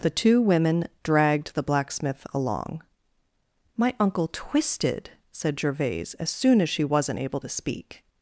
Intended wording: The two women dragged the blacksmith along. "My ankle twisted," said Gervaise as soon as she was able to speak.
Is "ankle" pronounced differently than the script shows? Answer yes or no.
yes